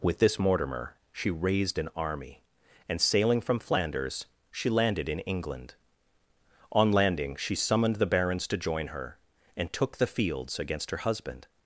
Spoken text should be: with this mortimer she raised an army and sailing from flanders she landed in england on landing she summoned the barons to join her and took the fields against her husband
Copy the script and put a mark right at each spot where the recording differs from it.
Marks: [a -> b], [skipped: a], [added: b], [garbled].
with this mortimer she raised an army and sailing from flanders she landed in england on landing she summoned the barons to join her and took the fields against her husband